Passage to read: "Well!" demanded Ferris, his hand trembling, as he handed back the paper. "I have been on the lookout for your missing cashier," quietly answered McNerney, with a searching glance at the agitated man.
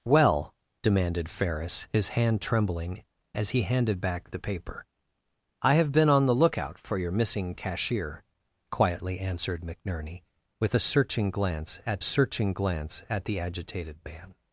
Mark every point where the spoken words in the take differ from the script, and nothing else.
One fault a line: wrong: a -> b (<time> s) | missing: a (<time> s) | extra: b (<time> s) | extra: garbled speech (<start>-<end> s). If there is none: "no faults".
extra: searching glance at (12.0 s)